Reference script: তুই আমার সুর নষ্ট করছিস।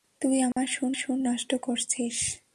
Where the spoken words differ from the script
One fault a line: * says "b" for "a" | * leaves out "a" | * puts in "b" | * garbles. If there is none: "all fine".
* puts in "সুর"